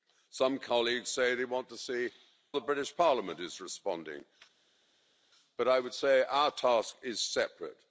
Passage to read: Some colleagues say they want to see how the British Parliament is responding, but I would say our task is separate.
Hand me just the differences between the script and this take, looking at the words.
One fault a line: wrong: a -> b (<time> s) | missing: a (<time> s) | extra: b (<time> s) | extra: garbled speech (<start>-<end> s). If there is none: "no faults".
missing: how (2.1 s)